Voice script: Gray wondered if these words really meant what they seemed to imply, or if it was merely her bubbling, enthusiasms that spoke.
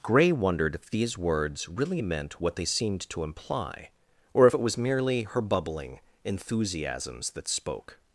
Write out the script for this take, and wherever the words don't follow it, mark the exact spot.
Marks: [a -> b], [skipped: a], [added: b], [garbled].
Gray wondered if these words really meant what they seemed to imply, or if it was merely her bubbling, enthusiasms that spoke.